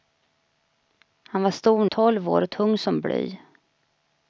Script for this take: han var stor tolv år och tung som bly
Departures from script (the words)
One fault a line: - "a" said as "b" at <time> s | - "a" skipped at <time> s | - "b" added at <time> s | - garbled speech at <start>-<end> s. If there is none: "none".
none